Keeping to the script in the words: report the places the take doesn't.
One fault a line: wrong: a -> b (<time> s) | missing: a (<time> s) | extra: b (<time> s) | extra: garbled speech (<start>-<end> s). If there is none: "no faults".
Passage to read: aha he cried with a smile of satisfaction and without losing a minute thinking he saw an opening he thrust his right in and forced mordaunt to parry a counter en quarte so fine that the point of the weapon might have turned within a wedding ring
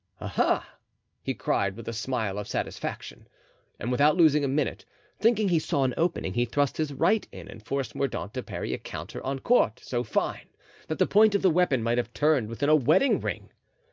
no faults